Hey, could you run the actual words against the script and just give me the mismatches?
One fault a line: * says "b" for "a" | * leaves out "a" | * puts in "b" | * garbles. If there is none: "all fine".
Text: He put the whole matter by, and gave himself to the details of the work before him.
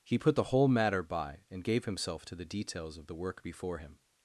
all fine